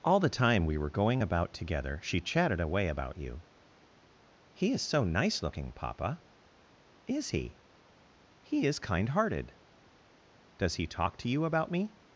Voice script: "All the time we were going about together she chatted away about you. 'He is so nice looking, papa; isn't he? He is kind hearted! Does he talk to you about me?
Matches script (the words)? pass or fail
fail